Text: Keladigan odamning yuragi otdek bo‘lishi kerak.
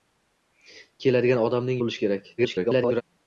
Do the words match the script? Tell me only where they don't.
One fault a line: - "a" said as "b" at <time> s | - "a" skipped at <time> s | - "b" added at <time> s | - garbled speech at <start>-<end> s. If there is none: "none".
- "yuragi otdek" skipped at 1.8 s
- garbled speech at 2.4-3.0 s